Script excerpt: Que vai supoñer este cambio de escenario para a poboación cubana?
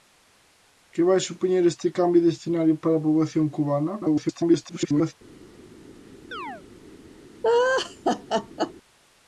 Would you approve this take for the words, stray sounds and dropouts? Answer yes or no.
no